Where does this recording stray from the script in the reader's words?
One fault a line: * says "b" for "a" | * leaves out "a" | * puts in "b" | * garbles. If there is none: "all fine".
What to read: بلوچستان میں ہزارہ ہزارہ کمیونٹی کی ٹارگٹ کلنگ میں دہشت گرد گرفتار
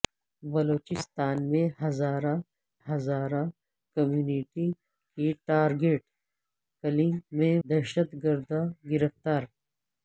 all fine